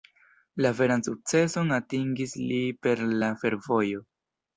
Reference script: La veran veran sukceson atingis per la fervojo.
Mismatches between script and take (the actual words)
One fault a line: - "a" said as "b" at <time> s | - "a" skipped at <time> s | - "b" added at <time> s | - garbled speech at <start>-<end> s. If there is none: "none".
- "veran" skipped at 1.0 s
- "li" added at 2.5 s